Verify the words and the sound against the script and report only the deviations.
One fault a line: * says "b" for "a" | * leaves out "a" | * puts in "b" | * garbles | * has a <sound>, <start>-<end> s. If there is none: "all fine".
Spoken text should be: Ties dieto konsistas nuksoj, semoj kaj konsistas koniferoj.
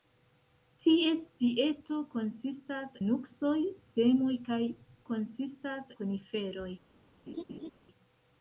* has a laugh, 7.3-7.7 s